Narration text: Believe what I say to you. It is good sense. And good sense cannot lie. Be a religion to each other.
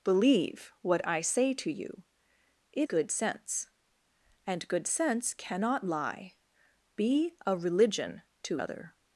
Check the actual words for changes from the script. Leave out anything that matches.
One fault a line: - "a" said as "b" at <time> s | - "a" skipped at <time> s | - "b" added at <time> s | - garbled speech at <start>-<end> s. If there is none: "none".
- "is" skipped at 2.9 s
- "each" skipped at 8.6 s